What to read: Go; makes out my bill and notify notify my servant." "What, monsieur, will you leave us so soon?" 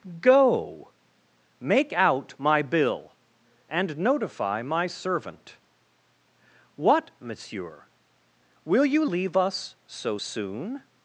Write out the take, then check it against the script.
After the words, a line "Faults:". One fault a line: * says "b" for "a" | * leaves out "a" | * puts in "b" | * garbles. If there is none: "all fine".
Go; make out my bill and notify my servant." "What, monsieur, will you leave us so soon?"
Faults:
* says "make" for "makes"
* leaves out "notify"